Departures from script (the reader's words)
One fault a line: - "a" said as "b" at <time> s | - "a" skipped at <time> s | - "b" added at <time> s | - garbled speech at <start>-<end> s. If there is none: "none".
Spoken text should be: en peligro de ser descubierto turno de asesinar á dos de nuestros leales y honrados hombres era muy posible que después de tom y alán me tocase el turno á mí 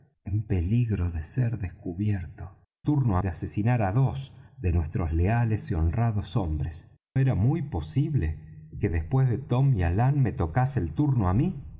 none